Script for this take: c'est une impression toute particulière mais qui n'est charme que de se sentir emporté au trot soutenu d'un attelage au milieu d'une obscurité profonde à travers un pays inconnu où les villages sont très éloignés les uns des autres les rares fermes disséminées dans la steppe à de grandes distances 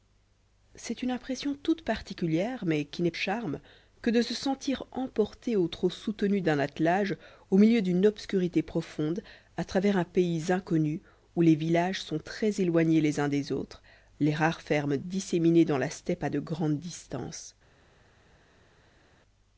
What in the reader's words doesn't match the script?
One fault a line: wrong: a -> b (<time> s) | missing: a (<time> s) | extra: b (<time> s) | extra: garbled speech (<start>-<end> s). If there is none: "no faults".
no faults